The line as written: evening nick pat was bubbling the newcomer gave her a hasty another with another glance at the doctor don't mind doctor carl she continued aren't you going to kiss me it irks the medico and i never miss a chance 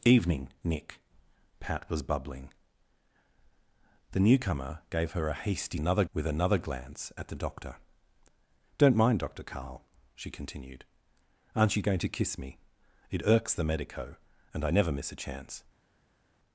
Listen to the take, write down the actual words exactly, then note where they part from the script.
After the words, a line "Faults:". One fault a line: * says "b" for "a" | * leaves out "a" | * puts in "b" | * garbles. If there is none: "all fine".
evening nick pat was bubbling the newcomer gave her a hasty another with another glance at the doctor don't mind doctor carl she continued aren't you going to kiss me it irks the medico and i never miss a chance
Faults:
all fine